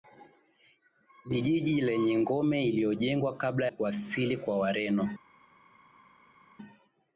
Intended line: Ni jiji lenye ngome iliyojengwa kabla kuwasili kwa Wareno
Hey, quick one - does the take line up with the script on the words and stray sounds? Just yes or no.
yes